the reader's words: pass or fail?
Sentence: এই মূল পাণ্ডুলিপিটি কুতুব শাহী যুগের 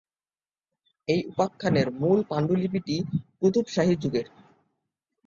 fail